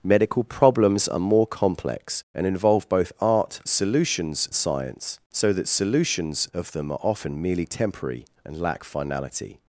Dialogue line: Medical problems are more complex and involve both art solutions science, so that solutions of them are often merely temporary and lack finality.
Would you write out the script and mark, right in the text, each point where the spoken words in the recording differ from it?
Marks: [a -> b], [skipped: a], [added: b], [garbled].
Medical problems are more complex and involve both art solutions science, so that solutions of them are often merely temporary and lack finality.